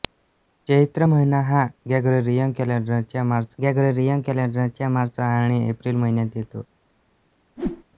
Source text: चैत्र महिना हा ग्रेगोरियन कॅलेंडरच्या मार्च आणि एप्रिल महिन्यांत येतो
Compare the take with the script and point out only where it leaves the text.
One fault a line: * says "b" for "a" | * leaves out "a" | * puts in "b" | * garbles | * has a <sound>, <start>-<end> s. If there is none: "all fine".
* puts in "ग्रेगोरियन कॅलेंडरच्या मार्च"
* has a whoosh, 7.6-7.8 s